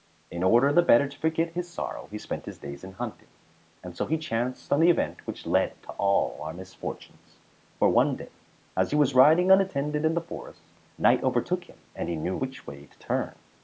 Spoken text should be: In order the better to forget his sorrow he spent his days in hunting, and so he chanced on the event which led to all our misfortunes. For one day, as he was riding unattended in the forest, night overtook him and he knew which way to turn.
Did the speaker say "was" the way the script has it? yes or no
yes